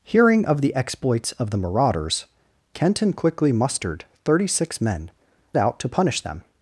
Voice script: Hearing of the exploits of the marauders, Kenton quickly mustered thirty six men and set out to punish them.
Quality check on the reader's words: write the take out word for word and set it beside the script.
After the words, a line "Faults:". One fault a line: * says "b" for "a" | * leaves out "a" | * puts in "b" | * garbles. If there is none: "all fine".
Hearing of the exploits of the marauders, Kenton quickly mustered thirty six men out to punish them.
Faults:
* leaves out "and set"